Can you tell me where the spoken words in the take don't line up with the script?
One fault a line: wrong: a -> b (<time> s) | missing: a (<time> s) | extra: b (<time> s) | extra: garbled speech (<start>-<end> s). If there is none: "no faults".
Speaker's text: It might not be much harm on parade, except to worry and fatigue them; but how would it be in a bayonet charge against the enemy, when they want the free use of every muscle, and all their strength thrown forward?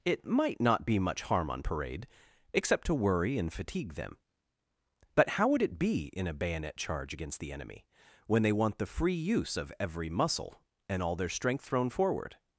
no faults